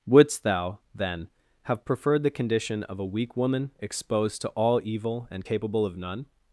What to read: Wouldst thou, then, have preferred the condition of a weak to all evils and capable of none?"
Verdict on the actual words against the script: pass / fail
fail